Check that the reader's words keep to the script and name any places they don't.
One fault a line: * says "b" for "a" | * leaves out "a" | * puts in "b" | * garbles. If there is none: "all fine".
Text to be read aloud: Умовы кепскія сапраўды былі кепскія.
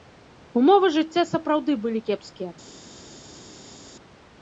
* says "жыцця" for "кепскія"